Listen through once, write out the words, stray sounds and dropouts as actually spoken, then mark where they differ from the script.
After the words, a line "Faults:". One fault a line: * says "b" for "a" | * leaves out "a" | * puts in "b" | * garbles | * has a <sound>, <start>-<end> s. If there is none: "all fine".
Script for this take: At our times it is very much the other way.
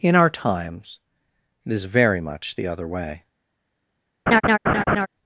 In our times it is very much the other way.
Faults:
* says "In" for "At"
* has a laugh, 4.3-5.1 s